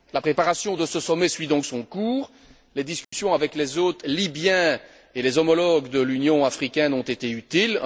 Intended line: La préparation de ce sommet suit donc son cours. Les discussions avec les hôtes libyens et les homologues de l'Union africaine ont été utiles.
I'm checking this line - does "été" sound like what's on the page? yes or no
yes